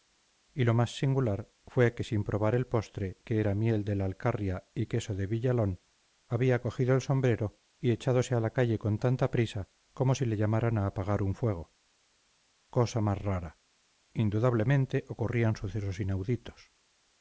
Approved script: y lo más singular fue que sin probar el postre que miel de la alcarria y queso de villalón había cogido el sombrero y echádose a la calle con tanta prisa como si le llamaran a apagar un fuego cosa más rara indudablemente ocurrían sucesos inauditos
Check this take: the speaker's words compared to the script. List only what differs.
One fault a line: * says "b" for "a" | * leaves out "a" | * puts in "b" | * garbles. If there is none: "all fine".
* puts in "era"